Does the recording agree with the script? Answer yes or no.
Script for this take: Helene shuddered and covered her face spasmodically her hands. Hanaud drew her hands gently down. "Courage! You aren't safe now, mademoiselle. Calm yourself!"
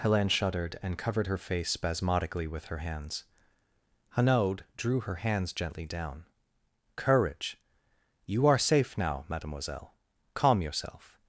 no